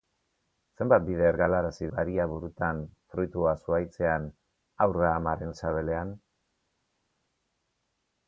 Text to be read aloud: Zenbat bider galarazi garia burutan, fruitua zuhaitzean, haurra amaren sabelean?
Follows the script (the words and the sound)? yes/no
yes